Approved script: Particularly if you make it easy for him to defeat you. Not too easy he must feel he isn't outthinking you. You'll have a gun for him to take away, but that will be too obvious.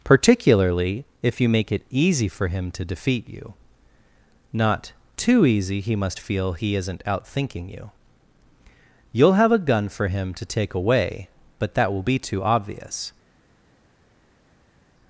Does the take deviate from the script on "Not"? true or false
false